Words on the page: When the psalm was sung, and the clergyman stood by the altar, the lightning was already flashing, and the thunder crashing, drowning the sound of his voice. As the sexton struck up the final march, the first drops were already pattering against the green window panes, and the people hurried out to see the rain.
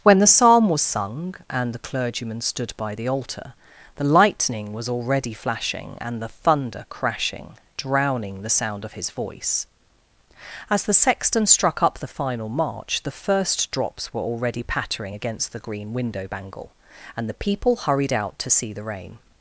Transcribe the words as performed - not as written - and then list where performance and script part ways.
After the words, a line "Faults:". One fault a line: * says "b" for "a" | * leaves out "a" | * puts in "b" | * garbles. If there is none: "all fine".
When the psalm was sung, and the clergyman stood by the altar, the lightning was already flashing, and the thunder crashing, drowning the sound of his voice. As the sexton struck up the final march, the first drops were already pattering against the green window bangle, and the people hurried out to see the rain.
Faults:
* says "bangle" for "panes"